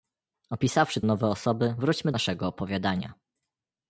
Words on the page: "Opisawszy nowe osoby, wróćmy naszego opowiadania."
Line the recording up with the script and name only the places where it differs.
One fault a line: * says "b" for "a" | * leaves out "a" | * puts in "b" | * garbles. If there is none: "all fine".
all fine